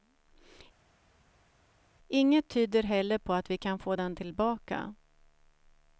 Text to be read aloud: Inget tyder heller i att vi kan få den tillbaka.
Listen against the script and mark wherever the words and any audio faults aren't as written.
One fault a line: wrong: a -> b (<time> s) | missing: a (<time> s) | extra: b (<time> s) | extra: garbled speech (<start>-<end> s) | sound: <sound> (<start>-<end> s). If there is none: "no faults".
wrong: i -> på (3.2 s)